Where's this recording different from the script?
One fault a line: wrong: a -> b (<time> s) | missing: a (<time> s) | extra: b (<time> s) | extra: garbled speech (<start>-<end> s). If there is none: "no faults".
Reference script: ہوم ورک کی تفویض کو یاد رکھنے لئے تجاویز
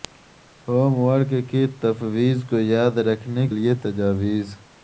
no faults